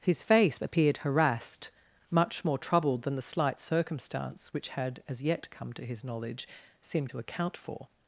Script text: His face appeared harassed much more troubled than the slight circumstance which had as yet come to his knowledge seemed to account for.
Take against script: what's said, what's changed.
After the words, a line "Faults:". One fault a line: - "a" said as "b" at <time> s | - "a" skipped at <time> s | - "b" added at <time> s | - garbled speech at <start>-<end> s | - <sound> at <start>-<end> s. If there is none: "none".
His face appeared harassed much more troubled than the slight circumstance which had as yet come to his knowledge seemed to account for.
Faults:
none